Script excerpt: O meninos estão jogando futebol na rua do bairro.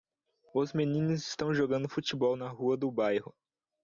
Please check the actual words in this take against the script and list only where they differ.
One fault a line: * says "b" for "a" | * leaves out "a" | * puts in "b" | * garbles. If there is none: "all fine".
* says "Os" for "O"